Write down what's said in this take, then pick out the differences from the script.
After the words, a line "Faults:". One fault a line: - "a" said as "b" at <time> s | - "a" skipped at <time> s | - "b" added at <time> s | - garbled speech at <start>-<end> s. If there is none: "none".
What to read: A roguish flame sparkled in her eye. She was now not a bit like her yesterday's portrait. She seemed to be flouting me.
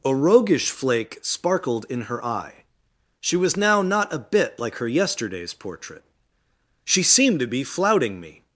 A roguish flake sparkled in her eye. She was now not a bit like her yesterday's portrait. She seemed to be flouting me.
Faults:
- "flame" said as "flake" at 0.7 s